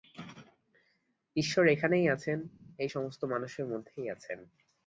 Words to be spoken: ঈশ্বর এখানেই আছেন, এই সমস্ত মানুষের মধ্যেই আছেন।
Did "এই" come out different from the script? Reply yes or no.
no